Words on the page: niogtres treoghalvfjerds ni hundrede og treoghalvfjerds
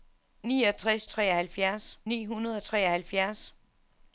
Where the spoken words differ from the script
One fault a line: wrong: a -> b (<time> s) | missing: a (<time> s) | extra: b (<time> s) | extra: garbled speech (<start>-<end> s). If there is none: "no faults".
no faults